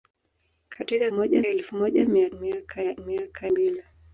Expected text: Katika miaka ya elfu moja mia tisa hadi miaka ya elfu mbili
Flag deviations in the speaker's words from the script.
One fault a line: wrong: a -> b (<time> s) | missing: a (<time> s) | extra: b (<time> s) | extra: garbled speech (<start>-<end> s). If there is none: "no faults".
wrong: miaka -> moja (1.1 s)
missing: tisa hadi (2.3 s)
wrong: elfu -> miaka (3.1 s)